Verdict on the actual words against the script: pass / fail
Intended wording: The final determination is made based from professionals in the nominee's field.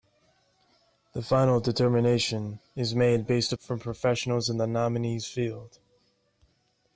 pass